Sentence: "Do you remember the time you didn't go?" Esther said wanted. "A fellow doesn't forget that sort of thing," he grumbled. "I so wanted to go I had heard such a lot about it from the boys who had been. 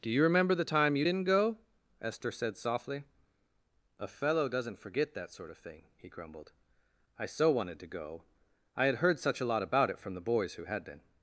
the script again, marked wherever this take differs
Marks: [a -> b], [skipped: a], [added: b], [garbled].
"Do you remember the time you didn't go?" Esther said [wanted. -> softly] "A fellow doesn't forget that sort of thing," he grumbled. "I so wanted to go I had heard such a lot about it from the boys who had been.